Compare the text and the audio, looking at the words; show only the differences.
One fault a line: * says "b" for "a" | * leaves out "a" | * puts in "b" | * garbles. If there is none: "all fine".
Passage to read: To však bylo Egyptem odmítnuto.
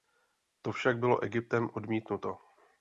all fine